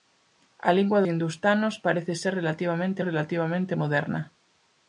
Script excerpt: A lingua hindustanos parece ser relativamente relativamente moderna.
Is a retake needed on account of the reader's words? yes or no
no